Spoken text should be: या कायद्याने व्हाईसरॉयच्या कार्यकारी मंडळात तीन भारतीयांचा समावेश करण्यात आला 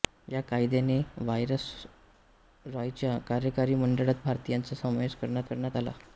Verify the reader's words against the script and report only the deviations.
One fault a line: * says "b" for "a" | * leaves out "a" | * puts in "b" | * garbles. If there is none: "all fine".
* leaves out "तीन"
* puts in "करण्यात"